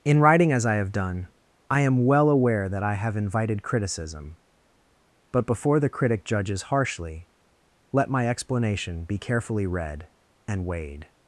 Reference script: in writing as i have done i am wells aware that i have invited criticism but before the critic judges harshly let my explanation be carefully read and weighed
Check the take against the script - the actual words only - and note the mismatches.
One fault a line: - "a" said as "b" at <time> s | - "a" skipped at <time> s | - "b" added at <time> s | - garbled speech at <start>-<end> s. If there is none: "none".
- "wells" said as "well" at 2.0 s